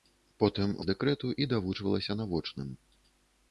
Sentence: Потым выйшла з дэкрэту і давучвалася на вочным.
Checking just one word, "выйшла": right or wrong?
wrong